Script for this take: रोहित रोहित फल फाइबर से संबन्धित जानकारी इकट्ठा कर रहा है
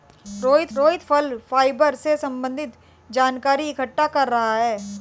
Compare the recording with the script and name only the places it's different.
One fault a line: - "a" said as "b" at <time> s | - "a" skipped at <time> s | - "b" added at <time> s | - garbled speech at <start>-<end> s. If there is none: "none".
none